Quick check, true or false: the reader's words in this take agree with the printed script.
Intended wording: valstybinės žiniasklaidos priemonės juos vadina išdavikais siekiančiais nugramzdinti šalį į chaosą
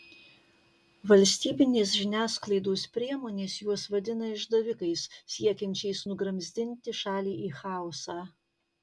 true